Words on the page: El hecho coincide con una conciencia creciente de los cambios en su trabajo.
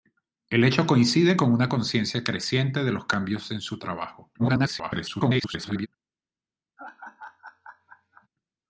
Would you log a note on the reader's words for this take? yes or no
yes